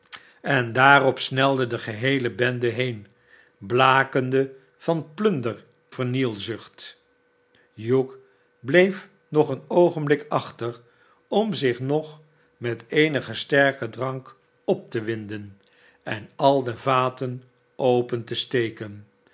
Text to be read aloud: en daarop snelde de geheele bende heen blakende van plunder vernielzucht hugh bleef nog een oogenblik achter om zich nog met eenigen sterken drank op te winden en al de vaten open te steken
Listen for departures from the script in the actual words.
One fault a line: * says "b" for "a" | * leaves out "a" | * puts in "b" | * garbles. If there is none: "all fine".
all fine